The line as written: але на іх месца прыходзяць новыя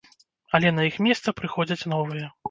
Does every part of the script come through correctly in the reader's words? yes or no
yes